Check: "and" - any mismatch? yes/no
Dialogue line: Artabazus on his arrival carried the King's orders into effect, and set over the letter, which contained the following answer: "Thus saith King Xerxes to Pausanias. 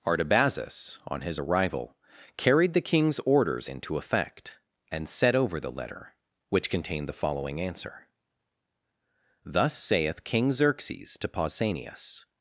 no